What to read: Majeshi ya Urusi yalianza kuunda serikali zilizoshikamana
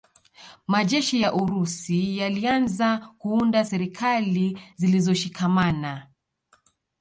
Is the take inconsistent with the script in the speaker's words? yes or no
no